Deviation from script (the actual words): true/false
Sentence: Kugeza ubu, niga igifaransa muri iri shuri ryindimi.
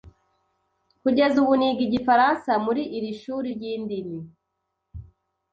false